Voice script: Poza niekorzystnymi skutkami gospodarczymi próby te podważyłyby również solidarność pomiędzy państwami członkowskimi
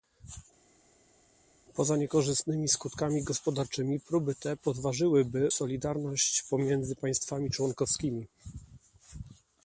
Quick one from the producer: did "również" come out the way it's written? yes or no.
no